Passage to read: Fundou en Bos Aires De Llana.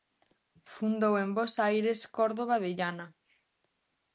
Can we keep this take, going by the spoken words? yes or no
no